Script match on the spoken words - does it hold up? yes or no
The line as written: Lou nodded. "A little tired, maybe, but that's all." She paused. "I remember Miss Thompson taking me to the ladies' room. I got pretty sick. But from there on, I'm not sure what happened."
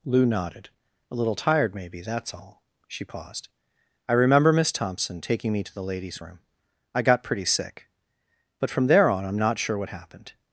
no